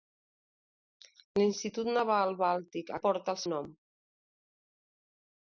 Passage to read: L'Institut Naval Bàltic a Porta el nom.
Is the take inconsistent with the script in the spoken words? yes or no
no